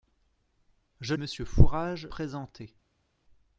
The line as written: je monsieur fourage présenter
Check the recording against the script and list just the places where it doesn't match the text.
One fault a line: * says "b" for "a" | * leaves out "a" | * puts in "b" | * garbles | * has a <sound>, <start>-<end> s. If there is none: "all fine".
all fine